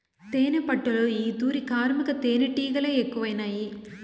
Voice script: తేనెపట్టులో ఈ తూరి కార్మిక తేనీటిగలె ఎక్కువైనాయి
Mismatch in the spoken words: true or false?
false